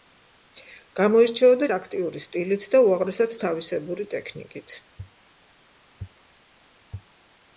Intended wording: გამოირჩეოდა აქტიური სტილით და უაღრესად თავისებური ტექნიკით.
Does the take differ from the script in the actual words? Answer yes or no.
no